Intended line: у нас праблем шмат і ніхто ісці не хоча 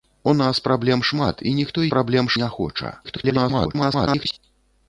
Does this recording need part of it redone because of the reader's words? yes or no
yes